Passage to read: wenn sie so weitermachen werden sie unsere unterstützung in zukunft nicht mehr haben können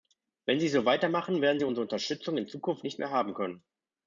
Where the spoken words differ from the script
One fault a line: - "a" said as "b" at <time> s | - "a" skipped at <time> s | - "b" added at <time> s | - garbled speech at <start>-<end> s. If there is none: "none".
none